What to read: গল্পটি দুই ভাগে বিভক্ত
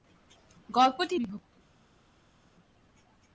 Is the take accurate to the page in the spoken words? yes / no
no